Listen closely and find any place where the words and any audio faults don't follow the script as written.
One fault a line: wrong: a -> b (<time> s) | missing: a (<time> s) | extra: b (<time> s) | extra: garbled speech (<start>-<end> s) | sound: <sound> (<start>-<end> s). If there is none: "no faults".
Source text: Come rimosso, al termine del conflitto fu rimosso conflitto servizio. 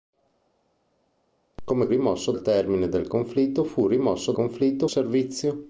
no faults